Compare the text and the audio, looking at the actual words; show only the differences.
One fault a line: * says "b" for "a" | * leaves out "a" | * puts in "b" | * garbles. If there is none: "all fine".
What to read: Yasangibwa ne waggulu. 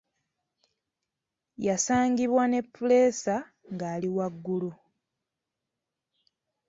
* puts in "puleesa ng'ali"